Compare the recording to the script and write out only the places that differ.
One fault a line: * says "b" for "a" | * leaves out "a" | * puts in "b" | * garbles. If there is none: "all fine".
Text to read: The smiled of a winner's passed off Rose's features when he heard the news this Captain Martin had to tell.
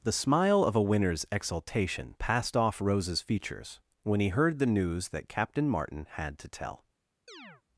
* says "smile" for "smiled"
* puts in "exultation"
* says "that" for "this"